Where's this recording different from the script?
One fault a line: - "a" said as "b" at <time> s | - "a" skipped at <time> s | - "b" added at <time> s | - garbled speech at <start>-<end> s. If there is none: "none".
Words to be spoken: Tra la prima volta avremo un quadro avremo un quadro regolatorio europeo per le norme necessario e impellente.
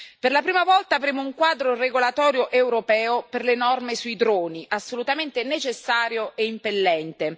- "Tra" said as "Per" at 0.2 s
- "avremo un quadro" skipped at 1.8 s
- "sui droni assolutamente" added at 4.0 s